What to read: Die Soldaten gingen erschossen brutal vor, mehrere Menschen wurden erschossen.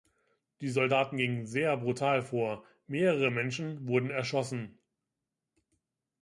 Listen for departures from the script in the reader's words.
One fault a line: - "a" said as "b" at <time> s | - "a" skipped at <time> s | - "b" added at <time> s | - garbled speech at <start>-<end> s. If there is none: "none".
- "erschossen" said as "sehr" at 1.4 s